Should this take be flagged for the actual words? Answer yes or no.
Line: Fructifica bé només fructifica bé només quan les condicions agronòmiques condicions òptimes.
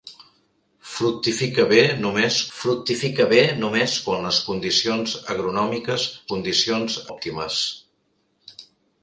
no